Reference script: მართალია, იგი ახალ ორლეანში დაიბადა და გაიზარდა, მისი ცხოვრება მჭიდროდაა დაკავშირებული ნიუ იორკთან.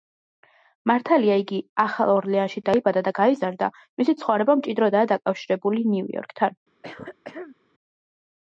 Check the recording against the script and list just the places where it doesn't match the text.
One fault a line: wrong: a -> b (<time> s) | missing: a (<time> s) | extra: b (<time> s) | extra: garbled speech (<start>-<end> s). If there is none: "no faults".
no faults